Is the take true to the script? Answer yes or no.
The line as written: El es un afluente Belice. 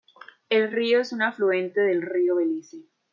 no